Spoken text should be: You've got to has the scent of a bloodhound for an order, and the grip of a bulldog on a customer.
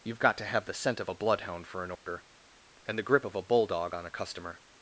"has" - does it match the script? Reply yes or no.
no